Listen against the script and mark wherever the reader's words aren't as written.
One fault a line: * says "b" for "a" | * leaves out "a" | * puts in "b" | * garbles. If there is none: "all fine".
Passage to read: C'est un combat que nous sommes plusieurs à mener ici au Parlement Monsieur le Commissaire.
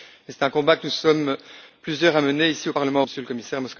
all fine